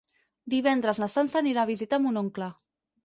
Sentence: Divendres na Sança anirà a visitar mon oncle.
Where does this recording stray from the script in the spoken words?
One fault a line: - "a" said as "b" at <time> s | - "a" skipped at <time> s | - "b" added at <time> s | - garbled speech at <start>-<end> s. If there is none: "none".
none